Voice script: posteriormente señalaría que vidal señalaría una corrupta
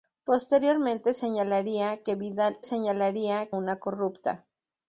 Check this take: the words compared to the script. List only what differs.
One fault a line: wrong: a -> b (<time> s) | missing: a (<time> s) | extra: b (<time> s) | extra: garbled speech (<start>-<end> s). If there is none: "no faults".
no faults